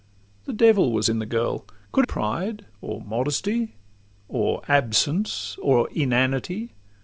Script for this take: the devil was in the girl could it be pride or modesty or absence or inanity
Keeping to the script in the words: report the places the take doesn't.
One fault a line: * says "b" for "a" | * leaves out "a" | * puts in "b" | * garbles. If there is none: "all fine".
* leaves out "it be"